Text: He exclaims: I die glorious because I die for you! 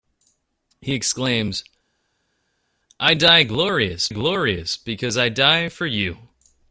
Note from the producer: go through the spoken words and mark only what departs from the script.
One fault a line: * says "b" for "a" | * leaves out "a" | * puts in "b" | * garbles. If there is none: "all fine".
* puts in "glorious"